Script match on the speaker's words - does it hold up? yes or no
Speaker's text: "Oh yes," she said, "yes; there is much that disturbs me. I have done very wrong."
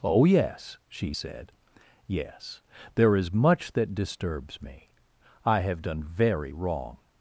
yes